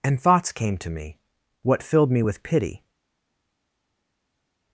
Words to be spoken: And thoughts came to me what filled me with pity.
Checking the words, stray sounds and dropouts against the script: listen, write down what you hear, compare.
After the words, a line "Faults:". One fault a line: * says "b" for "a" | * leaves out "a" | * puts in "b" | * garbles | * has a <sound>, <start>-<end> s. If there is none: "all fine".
And thoughts came to me what filled me with pity.
Faults:
all fine